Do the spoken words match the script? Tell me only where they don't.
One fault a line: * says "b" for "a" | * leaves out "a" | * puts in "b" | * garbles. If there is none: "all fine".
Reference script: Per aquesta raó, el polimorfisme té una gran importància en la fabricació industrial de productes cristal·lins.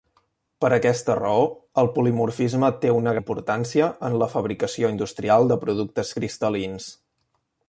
* leaves out "gran"